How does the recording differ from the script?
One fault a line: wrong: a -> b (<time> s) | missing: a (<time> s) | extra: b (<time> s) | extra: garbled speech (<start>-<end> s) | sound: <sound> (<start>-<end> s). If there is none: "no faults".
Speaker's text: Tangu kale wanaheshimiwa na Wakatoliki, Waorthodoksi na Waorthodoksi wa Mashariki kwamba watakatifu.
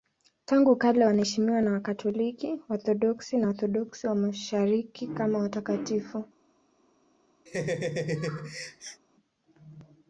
wrong: kwamba -> kama (5.1 s)
sound: laugh (7.5-9.0 s)